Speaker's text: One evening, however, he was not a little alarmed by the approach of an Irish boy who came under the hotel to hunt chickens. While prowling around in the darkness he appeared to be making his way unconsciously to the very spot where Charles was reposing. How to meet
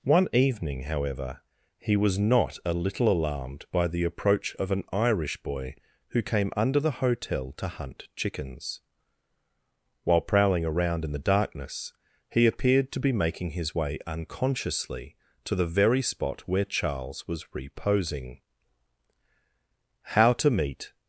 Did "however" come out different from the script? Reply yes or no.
no